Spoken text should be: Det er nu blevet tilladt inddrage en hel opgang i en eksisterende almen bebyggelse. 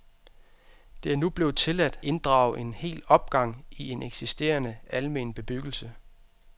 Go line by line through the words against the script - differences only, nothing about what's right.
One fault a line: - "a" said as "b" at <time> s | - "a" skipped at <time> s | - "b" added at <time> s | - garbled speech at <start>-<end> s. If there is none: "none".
none